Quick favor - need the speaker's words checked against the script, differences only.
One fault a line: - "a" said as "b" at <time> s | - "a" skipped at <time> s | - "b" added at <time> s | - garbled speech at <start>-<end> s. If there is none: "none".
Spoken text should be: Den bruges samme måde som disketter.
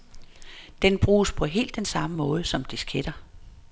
- "på helt den" added at 1.3 s